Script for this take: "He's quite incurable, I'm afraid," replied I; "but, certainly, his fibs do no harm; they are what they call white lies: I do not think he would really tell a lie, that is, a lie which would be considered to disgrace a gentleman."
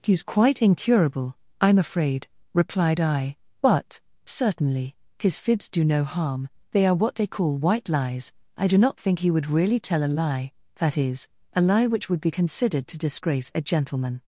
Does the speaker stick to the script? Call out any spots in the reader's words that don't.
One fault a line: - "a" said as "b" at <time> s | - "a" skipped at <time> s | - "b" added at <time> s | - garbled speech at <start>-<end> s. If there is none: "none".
none